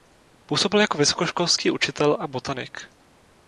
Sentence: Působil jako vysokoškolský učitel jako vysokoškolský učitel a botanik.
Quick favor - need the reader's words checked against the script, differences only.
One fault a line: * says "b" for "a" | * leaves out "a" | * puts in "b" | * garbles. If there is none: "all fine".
* leaves out "jako vysokoškolský učitel"